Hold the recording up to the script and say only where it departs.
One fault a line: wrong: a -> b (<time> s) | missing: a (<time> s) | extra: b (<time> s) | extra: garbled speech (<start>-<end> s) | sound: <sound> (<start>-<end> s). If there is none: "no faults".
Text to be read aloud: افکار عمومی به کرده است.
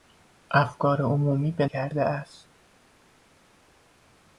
no faults